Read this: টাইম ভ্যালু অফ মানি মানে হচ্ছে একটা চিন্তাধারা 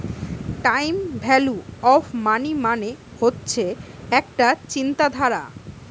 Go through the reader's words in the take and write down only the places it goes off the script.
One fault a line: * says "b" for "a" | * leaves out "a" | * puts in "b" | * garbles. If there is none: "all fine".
all fine